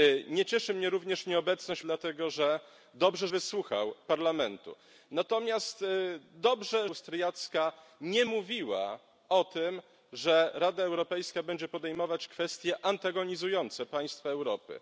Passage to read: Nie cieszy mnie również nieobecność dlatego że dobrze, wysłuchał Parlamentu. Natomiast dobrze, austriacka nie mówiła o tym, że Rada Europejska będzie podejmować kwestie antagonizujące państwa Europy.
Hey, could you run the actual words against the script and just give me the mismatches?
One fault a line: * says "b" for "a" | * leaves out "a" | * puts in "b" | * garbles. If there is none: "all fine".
all fine